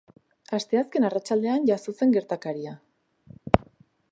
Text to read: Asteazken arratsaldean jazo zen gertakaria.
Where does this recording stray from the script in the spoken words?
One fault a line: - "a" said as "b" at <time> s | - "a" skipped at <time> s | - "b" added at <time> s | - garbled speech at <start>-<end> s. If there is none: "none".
none